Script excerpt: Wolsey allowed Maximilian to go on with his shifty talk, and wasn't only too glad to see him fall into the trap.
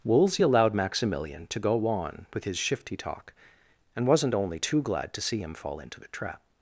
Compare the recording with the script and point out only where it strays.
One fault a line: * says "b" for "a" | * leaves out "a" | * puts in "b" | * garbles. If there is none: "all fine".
all fine